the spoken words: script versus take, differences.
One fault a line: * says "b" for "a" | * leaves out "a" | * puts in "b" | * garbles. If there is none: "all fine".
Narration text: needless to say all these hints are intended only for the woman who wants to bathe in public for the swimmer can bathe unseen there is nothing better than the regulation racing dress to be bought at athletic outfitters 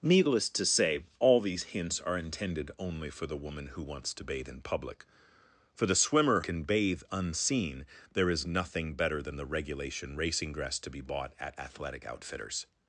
all fine